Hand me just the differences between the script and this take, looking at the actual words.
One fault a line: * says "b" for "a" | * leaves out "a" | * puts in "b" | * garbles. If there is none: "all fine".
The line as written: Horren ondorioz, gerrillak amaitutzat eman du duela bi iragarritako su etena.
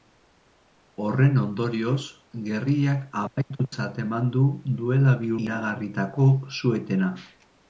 all fine